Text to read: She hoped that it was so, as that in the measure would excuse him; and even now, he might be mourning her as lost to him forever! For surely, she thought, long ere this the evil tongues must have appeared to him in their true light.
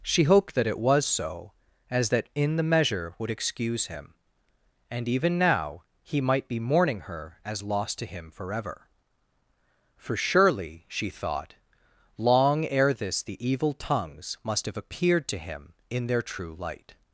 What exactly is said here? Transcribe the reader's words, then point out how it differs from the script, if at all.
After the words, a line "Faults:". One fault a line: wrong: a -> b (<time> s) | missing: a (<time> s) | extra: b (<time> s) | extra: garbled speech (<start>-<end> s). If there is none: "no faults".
She hoped that it was so, as that in the measure would excuse him; and even now, he might be mourning her as lost to him forever! For surely, she thought, long ere this the evil tongues must have appeared to him in their true light.
Faults:
no faults